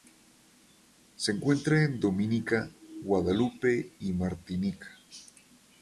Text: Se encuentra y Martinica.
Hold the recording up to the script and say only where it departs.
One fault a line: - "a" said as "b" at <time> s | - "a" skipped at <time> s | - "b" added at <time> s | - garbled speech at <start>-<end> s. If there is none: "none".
- "en Dominica Guadalupe" added at 1.8 s